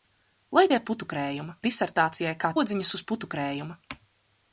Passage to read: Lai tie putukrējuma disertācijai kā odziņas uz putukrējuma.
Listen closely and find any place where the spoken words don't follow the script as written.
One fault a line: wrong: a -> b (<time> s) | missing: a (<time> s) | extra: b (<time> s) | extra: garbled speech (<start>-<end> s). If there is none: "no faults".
no faults